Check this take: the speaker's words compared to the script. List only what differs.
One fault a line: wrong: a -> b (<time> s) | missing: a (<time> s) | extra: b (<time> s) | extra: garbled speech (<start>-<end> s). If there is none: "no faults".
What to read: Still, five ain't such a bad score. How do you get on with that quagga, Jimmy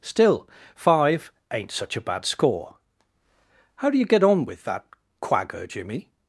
no faults